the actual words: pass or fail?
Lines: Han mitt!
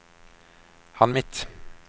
pass